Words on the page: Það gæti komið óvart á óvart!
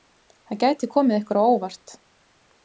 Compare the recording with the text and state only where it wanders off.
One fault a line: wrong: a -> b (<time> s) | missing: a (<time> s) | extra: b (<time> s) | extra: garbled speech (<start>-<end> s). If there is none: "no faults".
wrong: óvart -> ykkur (1.2 s)